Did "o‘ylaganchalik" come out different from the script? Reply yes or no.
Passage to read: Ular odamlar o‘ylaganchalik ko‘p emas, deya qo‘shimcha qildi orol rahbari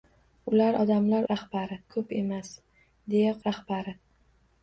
yes